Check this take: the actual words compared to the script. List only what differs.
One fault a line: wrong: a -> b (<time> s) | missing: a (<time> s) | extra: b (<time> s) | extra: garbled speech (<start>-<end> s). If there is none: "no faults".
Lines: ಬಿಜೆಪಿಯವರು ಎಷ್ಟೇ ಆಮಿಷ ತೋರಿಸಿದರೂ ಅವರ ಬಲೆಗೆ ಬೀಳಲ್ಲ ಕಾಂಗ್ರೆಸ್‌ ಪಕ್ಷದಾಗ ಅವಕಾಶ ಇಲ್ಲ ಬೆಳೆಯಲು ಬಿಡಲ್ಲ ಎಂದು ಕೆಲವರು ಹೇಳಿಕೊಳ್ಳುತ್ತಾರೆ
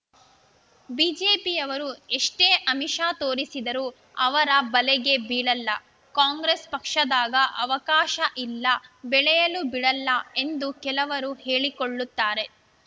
no faults